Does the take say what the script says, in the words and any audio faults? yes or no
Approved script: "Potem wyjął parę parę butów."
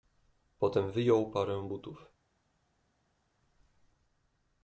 no